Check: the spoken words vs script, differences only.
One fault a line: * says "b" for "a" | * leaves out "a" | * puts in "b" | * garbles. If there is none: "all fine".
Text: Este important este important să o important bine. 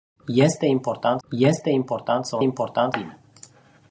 all fine